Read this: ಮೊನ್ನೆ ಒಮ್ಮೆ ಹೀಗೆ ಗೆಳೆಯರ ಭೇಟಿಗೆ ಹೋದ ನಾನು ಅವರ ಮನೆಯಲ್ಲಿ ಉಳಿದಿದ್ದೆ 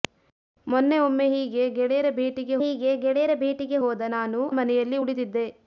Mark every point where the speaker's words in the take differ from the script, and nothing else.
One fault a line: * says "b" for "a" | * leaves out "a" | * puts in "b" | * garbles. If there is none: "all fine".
* puts in "ಹೀಗೆ ಗೆಳೆಯರ ಭೇಟಿಗೆ"
* leaves out "ಅವರ"